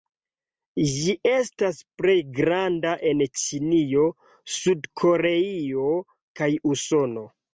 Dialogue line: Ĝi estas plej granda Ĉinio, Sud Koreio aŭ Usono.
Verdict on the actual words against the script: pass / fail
fail